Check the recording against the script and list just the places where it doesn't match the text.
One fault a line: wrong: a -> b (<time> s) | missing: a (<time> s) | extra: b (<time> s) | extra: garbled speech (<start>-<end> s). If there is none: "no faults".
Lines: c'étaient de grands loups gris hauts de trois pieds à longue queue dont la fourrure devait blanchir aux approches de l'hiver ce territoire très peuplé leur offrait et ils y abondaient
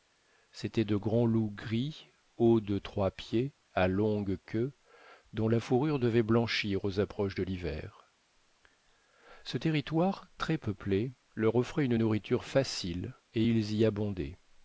extra: une nourriture facile (11.9 s)